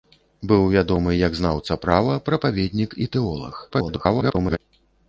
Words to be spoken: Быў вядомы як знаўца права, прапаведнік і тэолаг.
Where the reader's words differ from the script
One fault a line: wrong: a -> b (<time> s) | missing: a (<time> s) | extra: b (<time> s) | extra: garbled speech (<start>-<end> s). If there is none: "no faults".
extra: garbled speech (3.7-4.6 s)